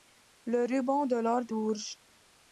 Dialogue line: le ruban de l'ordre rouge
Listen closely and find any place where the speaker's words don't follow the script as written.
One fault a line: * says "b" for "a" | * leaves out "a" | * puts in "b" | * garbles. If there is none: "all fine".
all fine